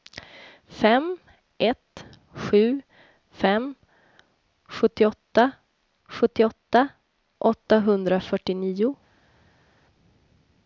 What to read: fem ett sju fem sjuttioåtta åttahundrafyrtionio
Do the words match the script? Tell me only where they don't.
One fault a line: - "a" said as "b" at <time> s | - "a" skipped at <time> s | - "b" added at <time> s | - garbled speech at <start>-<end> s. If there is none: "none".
- "sjuttioåtta" added at 6.0 s